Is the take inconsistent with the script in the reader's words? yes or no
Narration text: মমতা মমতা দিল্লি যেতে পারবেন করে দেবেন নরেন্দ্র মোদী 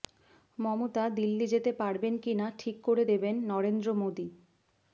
yes